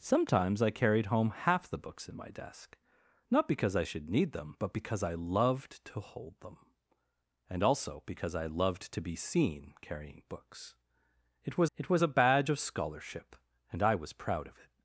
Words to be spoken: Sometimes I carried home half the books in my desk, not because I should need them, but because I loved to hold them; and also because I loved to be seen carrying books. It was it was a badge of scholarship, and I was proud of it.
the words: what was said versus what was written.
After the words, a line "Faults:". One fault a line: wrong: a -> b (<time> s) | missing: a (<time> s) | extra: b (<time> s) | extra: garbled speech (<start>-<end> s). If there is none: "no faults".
Sometimes I carried home half the books in my desk, not because I should need them, but because I loved to hold them; and also because I loved to be seen carrying books. It was it was a badge of scholarship, and I was proud of it.
Faults:
no faults